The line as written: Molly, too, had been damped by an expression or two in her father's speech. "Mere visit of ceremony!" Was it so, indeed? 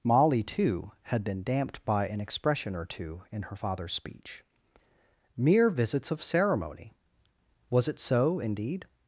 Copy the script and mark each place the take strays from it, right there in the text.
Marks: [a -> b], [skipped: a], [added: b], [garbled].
Molly, too, had been damped by an expression or two in her father's speech. "Mere [visit -> visits] of ceremony!" Was it so, indeed?